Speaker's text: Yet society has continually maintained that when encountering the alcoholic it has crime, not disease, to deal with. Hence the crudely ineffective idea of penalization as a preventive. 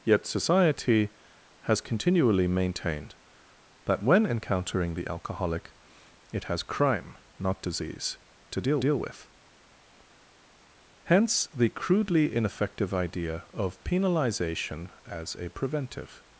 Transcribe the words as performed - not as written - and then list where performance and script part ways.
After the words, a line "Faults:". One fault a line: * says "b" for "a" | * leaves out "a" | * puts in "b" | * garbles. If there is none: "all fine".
Yet society has continually maintained that when encountering the alcoholic it has crime, not disease, to deal deal with. Hence the crudely ineffective idea of penalization as a preventive.
Faults:
* puts in "deal"